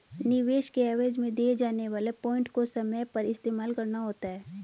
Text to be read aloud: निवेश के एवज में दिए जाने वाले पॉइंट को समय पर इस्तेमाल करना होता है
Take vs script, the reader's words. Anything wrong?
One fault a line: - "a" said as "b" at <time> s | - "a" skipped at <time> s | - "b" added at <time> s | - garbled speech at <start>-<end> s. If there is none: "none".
none